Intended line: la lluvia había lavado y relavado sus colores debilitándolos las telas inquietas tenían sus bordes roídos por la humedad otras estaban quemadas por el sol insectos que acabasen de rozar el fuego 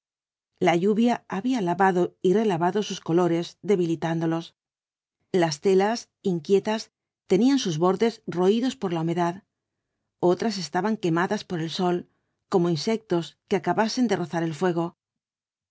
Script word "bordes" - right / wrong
right